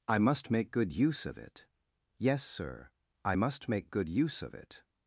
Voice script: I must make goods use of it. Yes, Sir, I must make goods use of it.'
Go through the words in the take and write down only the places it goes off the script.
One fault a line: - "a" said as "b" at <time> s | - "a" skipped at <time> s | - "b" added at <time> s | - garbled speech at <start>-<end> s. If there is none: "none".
- "goods" said as "good" at 0.7 s
- "goods" said as "good" at 3.9 s